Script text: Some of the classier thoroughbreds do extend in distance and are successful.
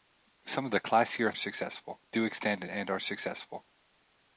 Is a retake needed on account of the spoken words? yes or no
yes